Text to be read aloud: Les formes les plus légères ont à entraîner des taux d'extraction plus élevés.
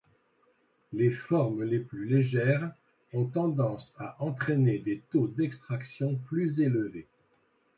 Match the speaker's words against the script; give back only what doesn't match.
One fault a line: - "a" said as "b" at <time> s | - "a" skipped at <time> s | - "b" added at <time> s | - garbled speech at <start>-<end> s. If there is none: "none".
- "tendance" added at 3.2 s